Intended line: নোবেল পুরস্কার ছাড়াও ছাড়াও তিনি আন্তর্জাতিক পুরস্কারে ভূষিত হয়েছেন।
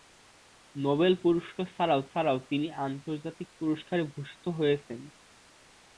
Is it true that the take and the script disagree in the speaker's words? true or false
false